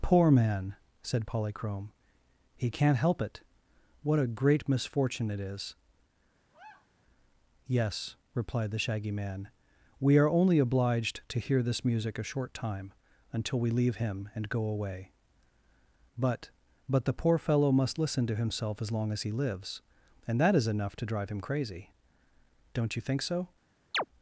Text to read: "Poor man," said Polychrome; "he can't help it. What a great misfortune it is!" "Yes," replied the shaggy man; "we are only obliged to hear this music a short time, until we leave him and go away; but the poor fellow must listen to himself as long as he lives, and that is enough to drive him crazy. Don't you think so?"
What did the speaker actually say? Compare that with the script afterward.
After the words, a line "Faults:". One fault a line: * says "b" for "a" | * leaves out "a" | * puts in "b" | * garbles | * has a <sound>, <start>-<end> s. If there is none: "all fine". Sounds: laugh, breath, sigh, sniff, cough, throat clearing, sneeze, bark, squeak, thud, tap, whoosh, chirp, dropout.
"Poor man," said Polychrome; "he can't help it. What a great misfortune it is!" "Yes," replied the shaggy man; "we are only obliged to hear this music a short time, until we leave him and go away; but but the poor fellow must listen to himself as long as he lives, and that is enough to drive him crazy. Don't you think so?"
Faults:
* has a sigh, 6.5-6.9 s
* puts in "but"
* has a chirp, 23.9-24.1 s